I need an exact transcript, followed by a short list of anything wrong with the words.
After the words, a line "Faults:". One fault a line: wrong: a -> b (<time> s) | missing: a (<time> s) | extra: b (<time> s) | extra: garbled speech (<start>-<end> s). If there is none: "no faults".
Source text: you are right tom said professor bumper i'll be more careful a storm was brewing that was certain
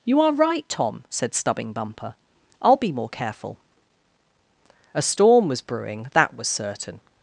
you are right tom said stubbing bumper i'll be more careful a storm was brewing that was certain
Faults:
wrong: professor -> stubbing (1.4 s)